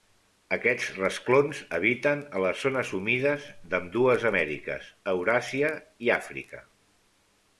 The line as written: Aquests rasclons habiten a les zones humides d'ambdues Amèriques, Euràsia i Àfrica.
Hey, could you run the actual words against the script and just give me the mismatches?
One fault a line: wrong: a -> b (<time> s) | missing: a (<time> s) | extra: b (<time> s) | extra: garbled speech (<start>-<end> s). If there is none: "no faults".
no faults